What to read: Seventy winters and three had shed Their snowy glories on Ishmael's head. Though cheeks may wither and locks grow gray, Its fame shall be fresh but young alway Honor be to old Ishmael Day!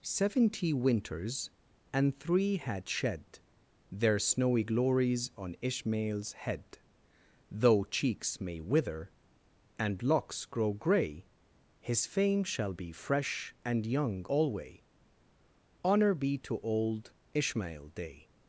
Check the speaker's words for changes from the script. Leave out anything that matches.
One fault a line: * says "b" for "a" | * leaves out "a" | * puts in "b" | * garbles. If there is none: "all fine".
* says "His" for "Its"
* says "and" for "but"